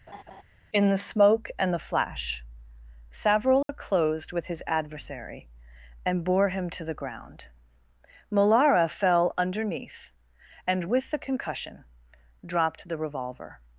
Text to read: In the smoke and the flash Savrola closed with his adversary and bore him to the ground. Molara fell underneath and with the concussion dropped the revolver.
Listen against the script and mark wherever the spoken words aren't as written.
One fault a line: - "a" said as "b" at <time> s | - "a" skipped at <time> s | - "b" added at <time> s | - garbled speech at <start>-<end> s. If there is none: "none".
none